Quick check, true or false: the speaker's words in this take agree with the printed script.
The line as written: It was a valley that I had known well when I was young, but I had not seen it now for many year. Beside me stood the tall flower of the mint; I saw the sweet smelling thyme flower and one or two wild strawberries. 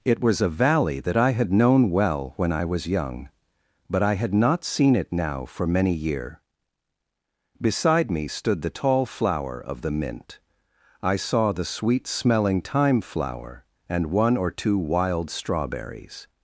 true